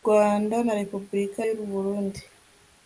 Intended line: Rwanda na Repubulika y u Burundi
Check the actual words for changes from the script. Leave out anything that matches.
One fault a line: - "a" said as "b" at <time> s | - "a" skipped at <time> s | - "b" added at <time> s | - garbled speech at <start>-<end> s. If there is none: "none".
none